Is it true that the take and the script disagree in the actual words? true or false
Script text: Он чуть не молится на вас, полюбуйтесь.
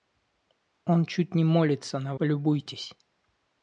true